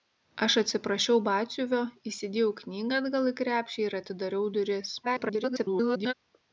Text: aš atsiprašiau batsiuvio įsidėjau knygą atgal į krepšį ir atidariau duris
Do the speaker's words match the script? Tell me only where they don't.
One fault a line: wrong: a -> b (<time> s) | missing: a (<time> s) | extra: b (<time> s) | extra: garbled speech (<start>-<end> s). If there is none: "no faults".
extra: garbled speech (5.0-6.1 s)